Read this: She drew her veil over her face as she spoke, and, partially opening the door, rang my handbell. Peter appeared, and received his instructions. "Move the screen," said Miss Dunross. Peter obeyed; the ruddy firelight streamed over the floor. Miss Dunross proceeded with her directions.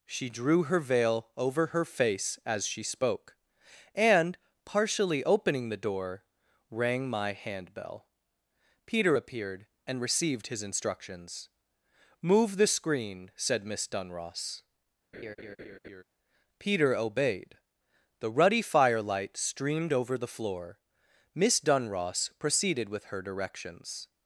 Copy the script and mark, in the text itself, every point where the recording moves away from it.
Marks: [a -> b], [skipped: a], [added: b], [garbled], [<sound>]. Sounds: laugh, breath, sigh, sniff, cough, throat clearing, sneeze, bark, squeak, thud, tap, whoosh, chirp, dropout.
She drew her veil over her face as she spoke, and, partially opening the door, rang my handbell. Peter appeared, and received his instructions. "Move the screen," said Miss Dunross. [laugh] Peter obeyed; the ruddy firelight streamed over the floor. Miss Dunross proceeded with her directions.